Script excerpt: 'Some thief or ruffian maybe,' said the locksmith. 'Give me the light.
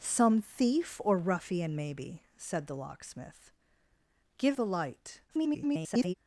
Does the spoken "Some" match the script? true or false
true